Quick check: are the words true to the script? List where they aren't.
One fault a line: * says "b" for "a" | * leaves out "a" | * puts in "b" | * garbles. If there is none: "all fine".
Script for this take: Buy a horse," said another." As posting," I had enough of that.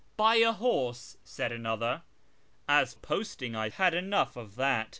all fine